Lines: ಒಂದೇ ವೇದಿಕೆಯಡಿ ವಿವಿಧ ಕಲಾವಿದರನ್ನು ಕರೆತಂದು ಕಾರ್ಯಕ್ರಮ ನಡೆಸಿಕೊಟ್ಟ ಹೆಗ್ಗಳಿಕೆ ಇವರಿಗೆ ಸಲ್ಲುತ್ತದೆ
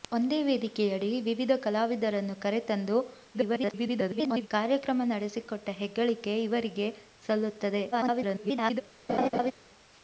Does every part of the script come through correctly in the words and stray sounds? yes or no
no